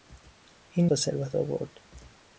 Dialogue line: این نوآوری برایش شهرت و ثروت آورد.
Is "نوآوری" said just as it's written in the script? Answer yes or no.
no